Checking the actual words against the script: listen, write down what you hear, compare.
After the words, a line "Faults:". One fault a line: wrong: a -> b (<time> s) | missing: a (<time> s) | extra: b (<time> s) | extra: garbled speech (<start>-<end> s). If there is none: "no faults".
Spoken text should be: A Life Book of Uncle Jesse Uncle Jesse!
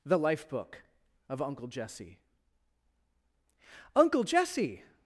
The Life Book of Uncle Jesse Uncle Jesse!
Faults:
wrong: A -> The (0.0 s)